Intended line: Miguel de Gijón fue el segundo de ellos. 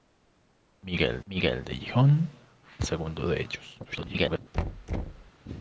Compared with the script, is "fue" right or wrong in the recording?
wrong